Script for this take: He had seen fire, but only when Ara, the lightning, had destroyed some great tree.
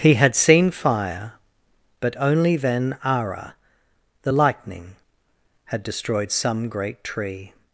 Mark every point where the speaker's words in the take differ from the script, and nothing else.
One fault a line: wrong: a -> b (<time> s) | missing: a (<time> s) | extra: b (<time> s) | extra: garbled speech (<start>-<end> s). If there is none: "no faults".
wrong: when -> then (2.6 s)